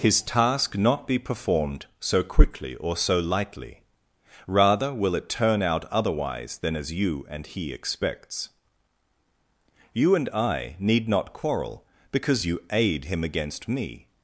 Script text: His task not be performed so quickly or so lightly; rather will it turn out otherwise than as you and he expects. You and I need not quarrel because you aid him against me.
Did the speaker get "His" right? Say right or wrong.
right